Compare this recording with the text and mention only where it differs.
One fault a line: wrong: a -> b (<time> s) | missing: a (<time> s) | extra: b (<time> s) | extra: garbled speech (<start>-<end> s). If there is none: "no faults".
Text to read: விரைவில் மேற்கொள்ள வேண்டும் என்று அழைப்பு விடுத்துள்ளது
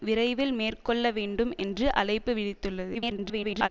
extra: garbled speech (2.9-3.7 s)